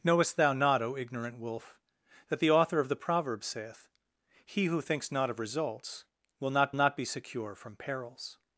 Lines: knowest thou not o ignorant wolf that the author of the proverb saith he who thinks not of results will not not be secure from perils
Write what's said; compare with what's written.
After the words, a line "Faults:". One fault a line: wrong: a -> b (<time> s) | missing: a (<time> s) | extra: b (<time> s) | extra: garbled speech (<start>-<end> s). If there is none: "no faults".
knowest thou not o ignorant wolf that the author of the proverb saith he who thinks not of results will not not be secure from perils
Faults:
no faults